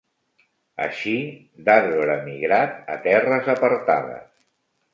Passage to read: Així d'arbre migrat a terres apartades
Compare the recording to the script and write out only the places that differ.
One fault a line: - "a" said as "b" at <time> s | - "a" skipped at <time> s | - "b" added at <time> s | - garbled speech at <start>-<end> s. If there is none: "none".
none